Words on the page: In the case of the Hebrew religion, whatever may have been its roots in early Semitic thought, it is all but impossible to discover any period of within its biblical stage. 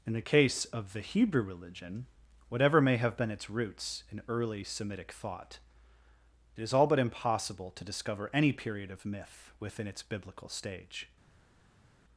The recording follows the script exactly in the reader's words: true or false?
false